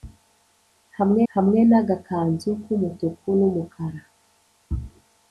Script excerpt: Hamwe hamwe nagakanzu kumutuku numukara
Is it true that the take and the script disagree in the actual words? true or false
false